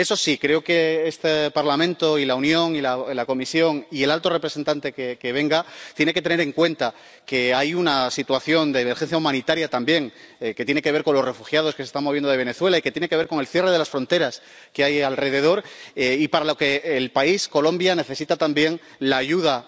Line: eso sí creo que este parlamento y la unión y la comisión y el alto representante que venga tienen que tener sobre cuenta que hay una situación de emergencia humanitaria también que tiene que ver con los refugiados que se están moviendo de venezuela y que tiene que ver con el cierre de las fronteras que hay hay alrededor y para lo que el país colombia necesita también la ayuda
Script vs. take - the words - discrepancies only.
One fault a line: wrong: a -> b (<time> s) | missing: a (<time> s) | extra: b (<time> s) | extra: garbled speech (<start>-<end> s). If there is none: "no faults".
wrong: sobre -> en (6.4 s)
missing: hay (15.0 s)